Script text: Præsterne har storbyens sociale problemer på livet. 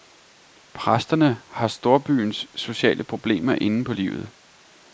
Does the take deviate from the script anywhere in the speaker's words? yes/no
yes